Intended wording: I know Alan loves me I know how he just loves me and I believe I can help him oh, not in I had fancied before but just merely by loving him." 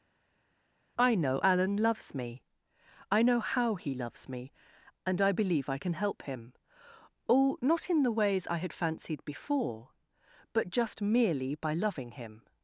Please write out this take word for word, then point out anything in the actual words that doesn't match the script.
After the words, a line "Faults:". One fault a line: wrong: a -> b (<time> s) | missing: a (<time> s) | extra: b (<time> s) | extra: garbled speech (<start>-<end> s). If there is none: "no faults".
I know Alan loves me I know how he loves me and I believe I can help him oh, not in the ways I had fancied before but just merely by loving him."
Faults:
missing: just (3.9 s)
extra: the ways (8.0 s)